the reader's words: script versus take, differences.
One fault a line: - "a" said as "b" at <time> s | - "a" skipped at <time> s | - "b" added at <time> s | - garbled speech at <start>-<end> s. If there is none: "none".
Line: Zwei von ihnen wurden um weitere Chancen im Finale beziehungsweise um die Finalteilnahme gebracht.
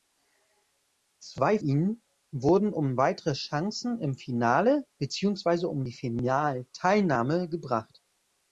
- "von" skipped at 1.6 s